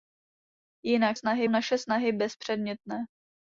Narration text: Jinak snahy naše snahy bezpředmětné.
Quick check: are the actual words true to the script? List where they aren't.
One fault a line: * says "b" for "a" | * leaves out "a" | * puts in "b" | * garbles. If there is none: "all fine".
all fine